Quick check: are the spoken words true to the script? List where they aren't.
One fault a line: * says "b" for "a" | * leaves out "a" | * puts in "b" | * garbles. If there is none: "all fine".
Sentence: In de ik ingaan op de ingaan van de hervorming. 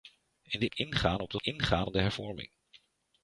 all fine